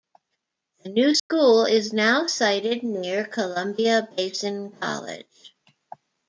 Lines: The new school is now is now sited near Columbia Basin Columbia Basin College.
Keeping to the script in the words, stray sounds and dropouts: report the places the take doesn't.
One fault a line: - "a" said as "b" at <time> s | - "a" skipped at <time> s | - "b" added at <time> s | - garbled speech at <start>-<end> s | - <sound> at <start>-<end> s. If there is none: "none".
- dropout at 1.2-1.3 s
- "is now" skipped at 2.3 s
- "Columbia Basin" skipped at 4.7 s